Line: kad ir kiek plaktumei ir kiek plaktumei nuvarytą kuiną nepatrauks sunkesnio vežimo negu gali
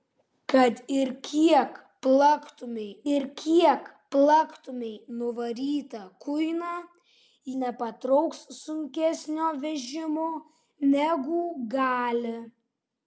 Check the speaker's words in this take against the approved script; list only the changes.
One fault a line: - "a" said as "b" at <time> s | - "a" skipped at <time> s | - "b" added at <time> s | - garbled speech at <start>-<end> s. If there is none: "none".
none